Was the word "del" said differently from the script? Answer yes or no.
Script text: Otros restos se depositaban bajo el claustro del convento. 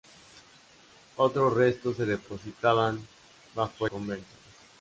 yes